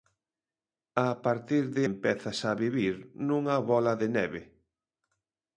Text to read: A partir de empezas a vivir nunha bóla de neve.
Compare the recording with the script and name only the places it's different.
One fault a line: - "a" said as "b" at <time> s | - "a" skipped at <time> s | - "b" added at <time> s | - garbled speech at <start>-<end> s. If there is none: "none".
none